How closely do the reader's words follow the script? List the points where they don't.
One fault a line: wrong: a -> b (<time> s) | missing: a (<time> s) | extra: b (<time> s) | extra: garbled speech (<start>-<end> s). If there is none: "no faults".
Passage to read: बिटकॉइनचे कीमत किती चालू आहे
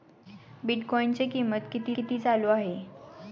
extra: किती (1.9 s)